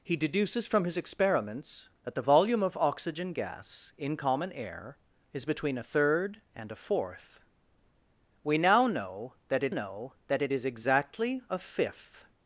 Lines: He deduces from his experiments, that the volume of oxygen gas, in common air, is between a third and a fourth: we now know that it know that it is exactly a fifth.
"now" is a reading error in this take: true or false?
false